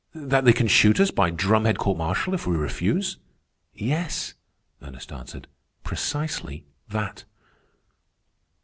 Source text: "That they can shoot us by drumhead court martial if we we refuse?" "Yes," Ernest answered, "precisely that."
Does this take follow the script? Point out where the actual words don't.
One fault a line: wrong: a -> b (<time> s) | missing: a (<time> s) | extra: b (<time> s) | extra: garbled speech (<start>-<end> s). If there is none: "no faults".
missing: we (2.6 s)